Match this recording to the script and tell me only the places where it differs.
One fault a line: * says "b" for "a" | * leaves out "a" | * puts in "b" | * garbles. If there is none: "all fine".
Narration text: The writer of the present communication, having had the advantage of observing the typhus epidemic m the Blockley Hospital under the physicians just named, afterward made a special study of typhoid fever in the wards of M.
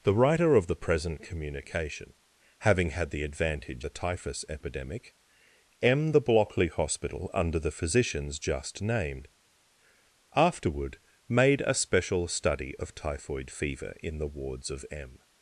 * leaves out "of observing"